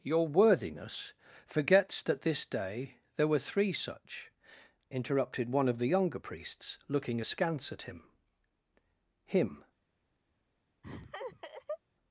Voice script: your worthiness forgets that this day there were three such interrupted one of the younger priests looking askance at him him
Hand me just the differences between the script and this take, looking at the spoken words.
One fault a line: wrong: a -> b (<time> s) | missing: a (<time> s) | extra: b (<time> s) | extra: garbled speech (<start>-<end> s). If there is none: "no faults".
no faults